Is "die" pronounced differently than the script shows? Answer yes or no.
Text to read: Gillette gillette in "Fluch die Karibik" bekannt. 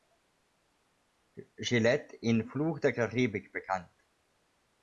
yes